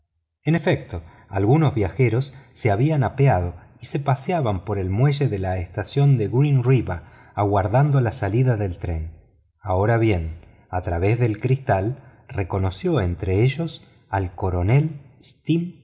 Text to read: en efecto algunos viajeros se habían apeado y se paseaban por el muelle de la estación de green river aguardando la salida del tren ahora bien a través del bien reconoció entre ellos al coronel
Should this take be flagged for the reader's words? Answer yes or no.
yes